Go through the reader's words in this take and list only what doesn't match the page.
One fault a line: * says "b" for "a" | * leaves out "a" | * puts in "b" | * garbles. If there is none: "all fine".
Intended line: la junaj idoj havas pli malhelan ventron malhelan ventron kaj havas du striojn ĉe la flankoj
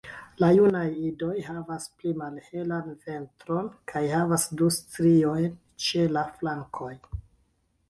* leaves out "malhelan ventron"